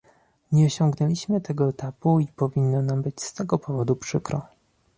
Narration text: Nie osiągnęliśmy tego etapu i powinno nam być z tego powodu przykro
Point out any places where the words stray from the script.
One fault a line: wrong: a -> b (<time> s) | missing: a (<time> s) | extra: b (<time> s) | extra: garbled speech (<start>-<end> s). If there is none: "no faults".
no faults